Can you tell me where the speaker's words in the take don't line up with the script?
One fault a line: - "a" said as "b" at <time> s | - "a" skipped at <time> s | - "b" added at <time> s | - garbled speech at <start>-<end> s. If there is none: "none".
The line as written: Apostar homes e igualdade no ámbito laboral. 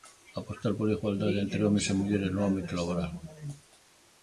- "pola igualdade entre" added at 0.8 s
- "igualdade" said as "mulleres" at 2.0 s